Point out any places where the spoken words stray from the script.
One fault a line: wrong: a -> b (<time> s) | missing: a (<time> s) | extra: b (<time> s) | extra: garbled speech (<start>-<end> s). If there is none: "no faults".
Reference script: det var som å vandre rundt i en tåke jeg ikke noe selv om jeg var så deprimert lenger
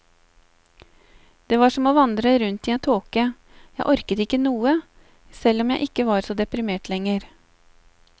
extra: orket (3.9 s)
extra: ikke (5.9 s)